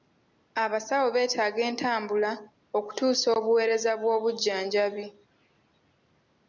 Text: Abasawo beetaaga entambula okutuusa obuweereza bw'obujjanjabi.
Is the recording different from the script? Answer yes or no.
no